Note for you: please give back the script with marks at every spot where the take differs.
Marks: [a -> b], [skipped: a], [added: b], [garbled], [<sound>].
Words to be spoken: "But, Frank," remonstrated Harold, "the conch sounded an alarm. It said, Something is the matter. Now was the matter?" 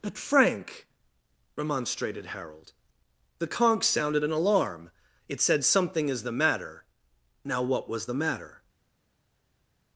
"But, Frank," remonstrated Harold, "the conch sounded an alarm. It said, Something is the matter. Now [added: what] was the matter?"